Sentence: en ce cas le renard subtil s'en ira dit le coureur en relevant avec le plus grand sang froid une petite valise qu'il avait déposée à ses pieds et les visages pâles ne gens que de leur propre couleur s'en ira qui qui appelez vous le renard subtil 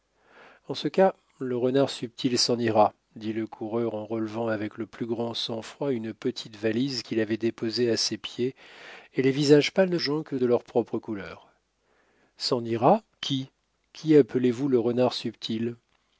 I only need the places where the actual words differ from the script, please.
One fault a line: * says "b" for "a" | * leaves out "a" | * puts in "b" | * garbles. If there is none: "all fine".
all fine